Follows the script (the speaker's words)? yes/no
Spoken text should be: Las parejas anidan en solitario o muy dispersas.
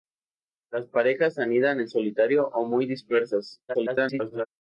no